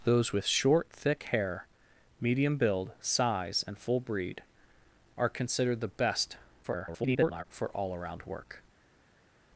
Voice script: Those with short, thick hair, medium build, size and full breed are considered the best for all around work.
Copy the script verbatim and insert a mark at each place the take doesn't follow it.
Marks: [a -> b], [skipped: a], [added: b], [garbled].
Those with short, thick hair, medium build, size and full breed are considered the best [garbled] for all around work.